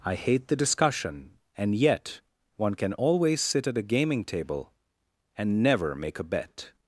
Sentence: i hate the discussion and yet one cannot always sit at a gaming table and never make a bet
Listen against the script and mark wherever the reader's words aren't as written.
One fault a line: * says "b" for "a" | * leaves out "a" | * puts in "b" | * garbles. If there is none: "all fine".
* says "can" for "cannot"